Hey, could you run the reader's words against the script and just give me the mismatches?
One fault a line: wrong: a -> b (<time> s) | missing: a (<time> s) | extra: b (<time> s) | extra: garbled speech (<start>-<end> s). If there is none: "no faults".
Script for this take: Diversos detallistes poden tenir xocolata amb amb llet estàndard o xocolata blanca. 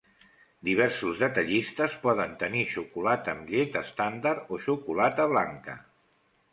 missing: amb (3.5 s)